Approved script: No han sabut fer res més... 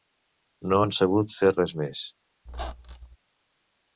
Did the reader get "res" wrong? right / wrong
right